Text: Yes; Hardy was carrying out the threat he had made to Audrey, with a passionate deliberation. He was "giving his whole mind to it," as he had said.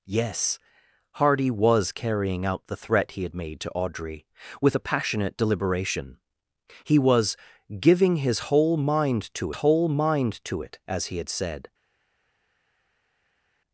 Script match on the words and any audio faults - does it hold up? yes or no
no